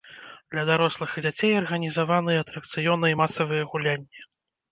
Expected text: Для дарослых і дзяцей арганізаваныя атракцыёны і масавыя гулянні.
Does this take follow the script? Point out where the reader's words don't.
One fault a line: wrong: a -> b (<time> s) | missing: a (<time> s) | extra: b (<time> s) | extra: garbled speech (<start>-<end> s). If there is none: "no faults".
no faults